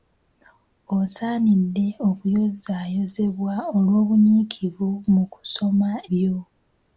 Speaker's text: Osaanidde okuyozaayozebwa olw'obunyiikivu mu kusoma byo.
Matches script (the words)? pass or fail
pass